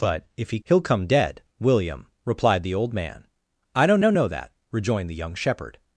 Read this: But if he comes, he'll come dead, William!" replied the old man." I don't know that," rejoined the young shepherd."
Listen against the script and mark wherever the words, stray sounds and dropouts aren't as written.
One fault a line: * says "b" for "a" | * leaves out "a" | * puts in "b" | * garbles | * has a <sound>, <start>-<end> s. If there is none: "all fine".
* leaves out "comes"
* puts in "don't"